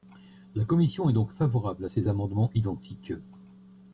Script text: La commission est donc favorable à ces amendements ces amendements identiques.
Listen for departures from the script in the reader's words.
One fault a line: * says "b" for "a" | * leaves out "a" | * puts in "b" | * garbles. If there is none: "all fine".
* leaves out "ces amendements"